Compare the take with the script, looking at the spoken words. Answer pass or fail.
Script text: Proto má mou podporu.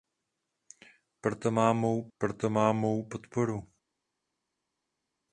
fail